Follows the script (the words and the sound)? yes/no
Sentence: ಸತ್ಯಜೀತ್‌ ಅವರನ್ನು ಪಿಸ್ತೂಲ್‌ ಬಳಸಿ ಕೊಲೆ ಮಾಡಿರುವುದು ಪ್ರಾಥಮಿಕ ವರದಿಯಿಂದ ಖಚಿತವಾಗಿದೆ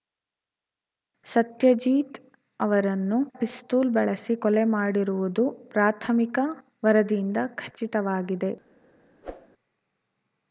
no